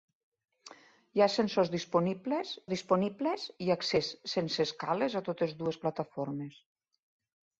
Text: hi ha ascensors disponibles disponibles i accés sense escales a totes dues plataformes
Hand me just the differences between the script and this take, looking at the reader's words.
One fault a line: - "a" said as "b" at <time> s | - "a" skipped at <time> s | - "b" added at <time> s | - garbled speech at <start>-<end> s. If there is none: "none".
none